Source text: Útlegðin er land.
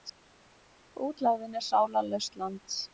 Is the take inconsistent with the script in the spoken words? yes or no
yes